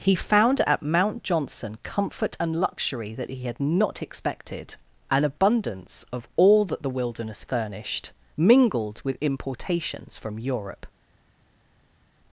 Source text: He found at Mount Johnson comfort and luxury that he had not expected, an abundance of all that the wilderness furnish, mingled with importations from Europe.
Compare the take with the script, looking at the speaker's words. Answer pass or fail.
fail